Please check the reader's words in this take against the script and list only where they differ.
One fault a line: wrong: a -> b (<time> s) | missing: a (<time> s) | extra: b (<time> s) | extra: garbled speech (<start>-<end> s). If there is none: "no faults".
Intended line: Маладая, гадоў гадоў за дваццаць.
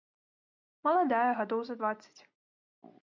missing: гадоў (1.6 s)